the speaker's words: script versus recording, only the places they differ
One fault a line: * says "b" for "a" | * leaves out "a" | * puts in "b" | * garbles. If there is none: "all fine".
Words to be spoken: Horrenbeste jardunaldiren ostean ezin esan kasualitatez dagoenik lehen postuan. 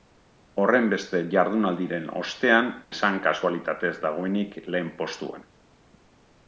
* leaves out "ezin"